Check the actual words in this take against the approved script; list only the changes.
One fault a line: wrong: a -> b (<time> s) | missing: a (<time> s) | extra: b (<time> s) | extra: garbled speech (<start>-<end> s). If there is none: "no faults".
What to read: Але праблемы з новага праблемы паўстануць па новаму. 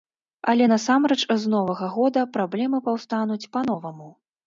wrong: праблемы -> насамрэч (0.7 s)
extra: года (2.0 s)